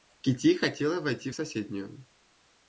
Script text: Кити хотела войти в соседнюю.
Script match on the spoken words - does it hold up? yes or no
yes